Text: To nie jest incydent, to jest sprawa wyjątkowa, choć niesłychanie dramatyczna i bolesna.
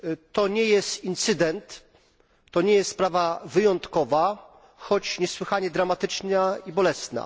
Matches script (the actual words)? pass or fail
fail